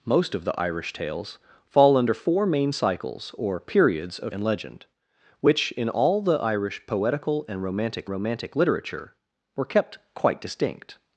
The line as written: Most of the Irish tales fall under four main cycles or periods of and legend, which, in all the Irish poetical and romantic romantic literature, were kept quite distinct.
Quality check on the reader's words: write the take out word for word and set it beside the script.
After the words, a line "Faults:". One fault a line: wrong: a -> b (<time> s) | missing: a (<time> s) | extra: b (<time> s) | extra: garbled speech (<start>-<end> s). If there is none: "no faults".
Most of the Irish tales fall under four main cycles or periods of and legend, which, in all the Irish poetical and romantic romantic literature, were kept quite distinct.
Faults:
no faults